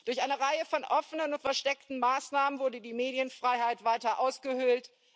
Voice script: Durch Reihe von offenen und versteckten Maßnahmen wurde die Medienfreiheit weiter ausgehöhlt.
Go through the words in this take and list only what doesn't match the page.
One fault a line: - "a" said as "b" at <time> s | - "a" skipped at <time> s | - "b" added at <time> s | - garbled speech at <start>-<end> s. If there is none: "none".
- "eine" added at 0.2 s